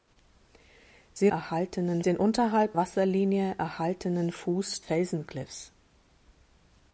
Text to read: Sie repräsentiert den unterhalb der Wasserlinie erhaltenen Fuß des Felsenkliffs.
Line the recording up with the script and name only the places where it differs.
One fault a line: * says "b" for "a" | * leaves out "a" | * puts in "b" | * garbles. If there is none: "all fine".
* says "erhaltenen" for "repräsentiert"
* leaves out "der"
* leaves out "des"